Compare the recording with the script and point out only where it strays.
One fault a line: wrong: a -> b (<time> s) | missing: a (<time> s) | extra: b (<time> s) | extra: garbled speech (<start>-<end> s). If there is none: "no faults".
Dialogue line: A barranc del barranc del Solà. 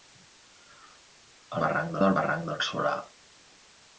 no faults